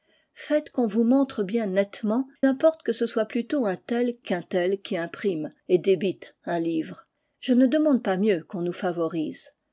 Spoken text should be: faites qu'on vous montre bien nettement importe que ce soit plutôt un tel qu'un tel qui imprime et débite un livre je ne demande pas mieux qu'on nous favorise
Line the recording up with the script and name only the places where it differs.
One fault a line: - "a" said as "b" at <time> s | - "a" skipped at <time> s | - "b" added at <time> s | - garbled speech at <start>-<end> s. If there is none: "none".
none